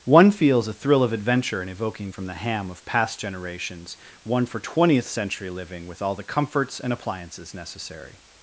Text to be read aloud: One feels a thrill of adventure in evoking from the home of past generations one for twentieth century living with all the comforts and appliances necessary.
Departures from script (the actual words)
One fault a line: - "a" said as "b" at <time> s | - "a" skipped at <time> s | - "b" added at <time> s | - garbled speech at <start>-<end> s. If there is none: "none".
- "home" said as "ham" at 2.3 s